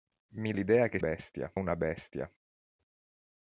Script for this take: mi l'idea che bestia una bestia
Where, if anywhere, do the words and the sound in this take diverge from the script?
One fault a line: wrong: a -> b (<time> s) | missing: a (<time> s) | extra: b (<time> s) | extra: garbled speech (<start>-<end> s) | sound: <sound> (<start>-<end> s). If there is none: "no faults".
no faults